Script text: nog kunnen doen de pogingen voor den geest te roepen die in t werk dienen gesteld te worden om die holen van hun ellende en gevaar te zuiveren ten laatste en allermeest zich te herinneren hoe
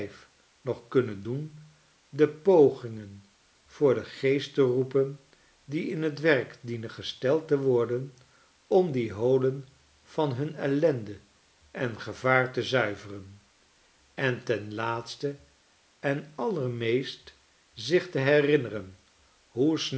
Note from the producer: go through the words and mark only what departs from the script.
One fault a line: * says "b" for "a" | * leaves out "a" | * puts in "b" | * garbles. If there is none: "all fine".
* puts in "en"